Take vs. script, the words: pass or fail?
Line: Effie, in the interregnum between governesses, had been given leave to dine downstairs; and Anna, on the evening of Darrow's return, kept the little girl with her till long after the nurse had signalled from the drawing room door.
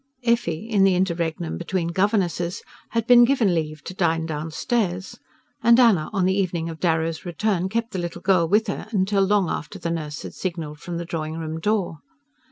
pass